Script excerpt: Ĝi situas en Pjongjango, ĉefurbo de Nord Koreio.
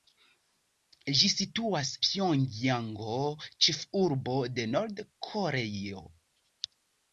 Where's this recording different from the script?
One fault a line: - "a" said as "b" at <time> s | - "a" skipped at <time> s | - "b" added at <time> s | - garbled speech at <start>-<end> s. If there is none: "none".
- "en" skipped at 1.9 s